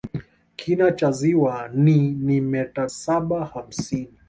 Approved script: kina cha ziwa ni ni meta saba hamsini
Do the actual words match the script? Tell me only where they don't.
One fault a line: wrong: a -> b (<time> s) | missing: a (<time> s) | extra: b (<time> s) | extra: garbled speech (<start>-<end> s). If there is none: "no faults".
no faults